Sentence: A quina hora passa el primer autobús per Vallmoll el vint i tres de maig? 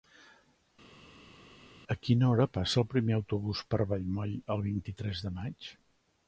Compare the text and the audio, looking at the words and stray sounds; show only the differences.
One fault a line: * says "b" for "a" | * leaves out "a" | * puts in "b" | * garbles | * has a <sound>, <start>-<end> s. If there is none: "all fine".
all fine